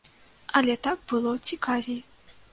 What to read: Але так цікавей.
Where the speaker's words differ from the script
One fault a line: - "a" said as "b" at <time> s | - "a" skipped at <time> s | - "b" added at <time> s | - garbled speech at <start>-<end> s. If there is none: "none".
- "было" added at 1.1 s